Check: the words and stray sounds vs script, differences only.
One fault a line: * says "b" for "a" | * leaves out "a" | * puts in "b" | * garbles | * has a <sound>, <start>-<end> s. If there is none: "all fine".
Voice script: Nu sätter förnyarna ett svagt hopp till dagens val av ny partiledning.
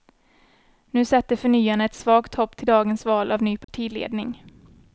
* has a dropout, 3.6-3.7 s